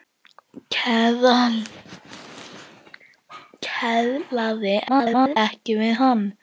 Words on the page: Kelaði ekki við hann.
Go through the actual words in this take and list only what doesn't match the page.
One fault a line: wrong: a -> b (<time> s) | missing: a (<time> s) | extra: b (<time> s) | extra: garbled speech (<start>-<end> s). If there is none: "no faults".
extra: garbled speech (4.9-5.4 s)